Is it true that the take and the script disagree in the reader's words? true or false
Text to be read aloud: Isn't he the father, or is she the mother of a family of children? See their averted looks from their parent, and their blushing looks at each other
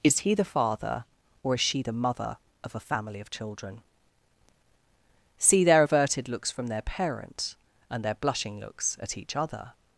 true